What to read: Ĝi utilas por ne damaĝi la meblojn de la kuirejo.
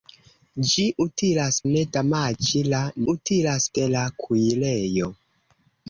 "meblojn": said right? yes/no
no